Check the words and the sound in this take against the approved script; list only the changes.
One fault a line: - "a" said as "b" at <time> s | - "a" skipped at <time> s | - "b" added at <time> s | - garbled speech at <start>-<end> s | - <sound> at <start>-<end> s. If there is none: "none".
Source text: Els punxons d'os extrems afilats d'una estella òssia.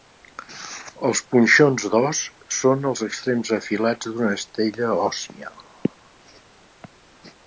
- "són els" added at 2.6 s